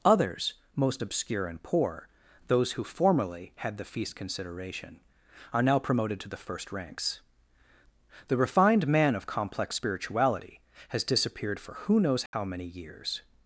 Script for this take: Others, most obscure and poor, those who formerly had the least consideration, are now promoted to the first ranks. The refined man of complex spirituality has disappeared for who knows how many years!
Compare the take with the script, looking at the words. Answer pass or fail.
fail